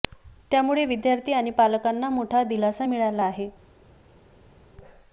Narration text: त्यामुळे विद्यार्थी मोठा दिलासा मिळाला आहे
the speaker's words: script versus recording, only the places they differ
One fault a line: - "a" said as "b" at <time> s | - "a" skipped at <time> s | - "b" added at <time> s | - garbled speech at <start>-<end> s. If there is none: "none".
- "आणि पालकांना" added at 1.3 s